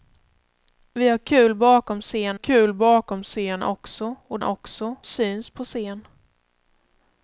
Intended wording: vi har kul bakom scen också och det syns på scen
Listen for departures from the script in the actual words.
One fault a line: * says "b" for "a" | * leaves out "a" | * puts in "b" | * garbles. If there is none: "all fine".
* puts in "kul bakom scen"
* says "också" for "det"